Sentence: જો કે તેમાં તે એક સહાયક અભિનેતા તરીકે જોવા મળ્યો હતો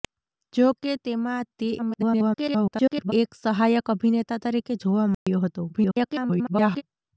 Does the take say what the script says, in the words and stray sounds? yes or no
no